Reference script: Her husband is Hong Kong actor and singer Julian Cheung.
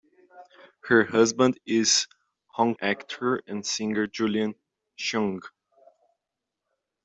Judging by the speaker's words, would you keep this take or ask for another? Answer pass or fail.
fail